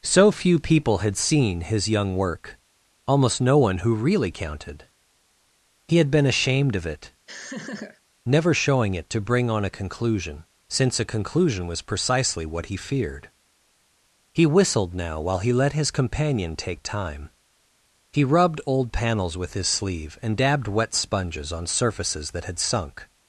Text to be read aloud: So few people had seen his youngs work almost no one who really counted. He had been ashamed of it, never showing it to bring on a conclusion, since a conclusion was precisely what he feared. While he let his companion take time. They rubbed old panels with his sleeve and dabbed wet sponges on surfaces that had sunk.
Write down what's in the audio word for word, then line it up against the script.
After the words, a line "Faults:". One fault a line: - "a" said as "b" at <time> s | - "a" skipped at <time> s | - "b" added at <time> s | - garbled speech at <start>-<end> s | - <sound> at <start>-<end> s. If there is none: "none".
So few people had seen his young work almost no one who really counted. He had been ashamed of it, never showing it to bring on a conclusion, since a conclusion was precisely what he feared. He whistled now while he let his companion take time. He rubbed old panels with his sleeve and dabbed wet sponges on surfaces that had sunk.
Faults:
- "youngs" said as "young" at 1.9 s
- laugh at 7.3-8.0 s
- "He whistled now" added at 14.3 s
- "They" said as "He" at 18.1 s